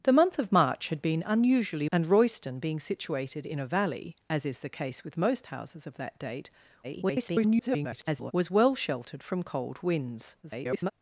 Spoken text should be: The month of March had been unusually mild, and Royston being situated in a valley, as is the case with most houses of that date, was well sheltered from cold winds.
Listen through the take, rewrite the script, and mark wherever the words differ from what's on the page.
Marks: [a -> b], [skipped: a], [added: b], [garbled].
The month of March had been unusually [skipped: mild,] and Royston being situated in a valley, as is the case with most houses of that date, [garbled] was well sheltered from cold winds. [garbled]